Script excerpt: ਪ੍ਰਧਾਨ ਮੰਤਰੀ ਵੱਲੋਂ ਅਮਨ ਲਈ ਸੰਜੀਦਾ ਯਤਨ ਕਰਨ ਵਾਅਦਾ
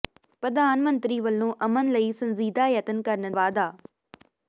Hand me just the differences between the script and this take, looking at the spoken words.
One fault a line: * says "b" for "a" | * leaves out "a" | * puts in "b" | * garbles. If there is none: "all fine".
all fine